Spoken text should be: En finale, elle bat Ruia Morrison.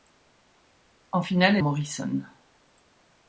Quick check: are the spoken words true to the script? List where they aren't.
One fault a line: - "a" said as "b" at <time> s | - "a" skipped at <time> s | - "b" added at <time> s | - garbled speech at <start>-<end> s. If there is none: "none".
- "elle bat Ruia" skipped at 1.6 s